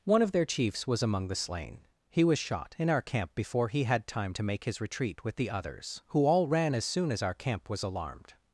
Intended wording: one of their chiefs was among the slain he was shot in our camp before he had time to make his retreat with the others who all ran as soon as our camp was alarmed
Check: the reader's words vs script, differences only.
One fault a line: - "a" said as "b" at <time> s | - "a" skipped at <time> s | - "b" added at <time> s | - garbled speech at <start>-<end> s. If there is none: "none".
none